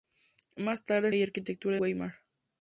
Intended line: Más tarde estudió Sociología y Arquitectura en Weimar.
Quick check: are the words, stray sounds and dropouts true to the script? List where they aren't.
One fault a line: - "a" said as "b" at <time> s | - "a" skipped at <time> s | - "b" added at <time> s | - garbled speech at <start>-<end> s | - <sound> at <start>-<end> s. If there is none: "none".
- "estudió Sociología" skipped at 1.1 s
- "en" skipped at 1.8 s